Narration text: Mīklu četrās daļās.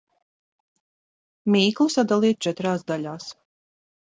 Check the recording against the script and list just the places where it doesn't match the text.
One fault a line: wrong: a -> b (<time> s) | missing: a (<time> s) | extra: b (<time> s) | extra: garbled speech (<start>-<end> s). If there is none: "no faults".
extra: sadaliet (1.9 s)